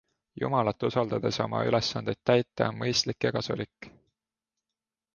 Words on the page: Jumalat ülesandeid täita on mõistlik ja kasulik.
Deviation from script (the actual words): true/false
true